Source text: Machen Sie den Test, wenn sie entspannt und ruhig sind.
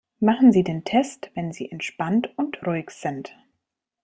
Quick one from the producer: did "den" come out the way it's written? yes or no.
yes